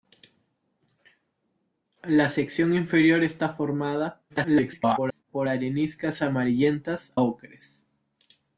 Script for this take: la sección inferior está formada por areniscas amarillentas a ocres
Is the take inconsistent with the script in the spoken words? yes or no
yes